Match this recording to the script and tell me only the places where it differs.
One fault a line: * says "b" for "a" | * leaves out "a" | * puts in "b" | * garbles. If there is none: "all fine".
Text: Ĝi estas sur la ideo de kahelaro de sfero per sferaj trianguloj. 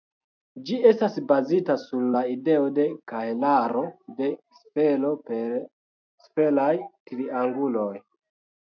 * puts in "bazita"